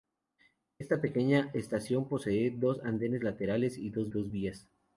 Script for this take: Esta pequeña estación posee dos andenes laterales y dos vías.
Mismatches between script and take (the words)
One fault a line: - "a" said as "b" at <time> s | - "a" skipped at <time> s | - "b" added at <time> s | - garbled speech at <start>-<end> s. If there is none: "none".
- "dos" added at 4.1 s